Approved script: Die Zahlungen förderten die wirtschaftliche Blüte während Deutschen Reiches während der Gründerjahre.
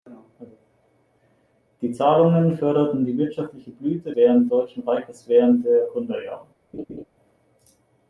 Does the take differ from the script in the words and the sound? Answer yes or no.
yes